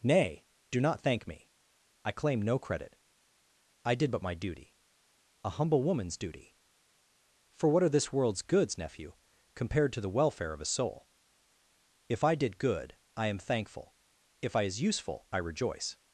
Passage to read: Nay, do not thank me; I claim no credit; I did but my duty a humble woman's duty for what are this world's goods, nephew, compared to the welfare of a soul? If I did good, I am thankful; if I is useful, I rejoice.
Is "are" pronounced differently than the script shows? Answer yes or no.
no